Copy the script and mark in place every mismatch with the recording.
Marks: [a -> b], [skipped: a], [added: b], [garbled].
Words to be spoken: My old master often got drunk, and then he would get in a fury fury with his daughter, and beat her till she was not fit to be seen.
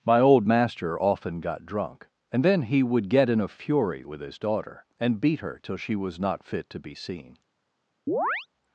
My old master often got drunk, and then he would get in a fury [skipped: fury] with his daughter, and beat her till she was not fit to be seen.